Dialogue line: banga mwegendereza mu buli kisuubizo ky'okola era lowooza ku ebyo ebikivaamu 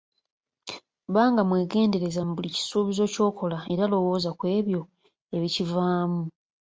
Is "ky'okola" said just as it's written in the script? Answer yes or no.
yes